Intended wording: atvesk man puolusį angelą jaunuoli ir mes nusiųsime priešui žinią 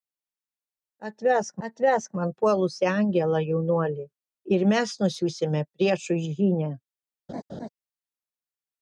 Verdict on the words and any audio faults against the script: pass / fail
fail